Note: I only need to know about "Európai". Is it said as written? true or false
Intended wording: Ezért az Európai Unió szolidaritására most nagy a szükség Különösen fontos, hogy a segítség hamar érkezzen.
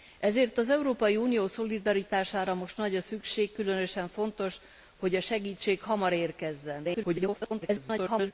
true